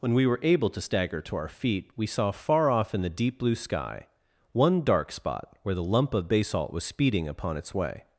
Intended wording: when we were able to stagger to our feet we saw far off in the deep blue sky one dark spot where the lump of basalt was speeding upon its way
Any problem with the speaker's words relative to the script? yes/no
no